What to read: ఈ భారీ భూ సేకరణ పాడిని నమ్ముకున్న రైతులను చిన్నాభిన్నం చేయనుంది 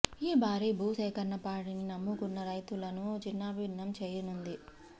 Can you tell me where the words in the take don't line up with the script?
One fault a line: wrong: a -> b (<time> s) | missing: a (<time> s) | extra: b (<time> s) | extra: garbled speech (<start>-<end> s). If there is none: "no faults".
no faults